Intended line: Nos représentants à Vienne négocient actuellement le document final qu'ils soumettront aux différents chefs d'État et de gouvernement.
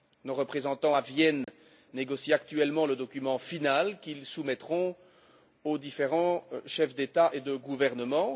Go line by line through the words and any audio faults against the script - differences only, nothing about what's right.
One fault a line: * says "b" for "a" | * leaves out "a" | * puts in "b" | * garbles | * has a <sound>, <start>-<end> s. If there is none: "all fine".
* has a dropout, 1.4-1.5 s